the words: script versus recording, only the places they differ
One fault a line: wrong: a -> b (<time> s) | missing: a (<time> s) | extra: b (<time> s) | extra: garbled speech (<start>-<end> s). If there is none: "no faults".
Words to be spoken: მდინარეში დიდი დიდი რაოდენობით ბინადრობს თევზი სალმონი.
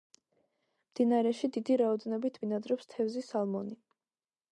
missing: დიდი (1.8 s)